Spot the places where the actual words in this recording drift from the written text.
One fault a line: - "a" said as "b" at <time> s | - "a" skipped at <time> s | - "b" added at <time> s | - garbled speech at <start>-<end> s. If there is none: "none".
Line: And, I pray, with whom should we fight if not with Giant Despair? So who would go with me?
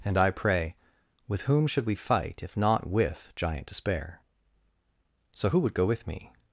none